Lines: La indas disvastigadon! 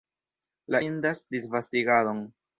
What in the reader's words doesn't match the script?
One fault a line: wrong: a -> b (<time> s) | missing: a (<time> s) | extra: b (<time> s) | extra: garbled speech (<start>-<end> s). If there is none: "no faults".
no faults